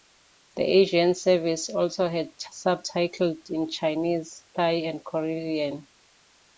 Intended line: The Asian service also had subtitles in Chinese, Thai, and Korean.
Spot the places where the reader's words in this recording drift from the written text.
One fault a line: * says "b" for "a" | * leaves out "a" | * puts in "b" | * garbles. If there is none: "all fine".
all fine